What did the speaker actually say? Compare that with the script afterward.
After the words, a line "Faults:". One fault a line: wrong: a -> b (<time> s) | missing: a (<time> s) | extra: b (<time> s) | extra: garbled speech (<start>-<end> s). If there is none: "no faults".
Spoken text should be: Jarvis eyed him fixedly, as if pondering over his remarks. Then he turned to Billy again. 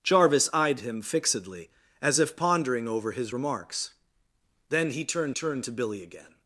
Jarvis eyed him fixedly, as if pondering over his remarks. Then he turned turned to Billy again.
Faults:
extra: turned (5.3 s)